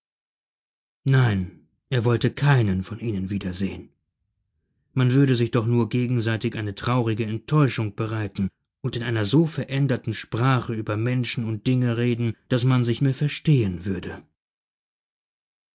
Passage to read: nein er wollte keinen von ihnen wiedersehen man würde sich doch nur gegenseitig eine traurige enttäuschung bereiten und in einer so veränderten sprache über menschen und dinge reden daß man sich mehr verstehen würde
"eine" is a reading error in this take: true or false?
false